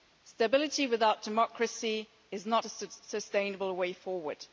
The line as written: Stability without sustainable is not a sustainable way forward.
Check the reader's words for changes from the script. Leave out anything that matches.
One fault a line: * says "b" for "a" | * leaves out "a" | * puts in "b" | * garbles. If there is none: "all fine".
* says "democracy" for "sustainable"